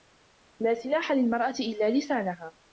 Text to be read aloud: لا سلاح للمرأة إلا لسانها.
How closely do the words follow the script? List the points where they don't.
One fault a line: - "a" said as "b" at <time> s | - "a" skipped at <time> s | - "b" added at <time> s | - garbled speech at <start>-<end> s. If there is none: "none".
none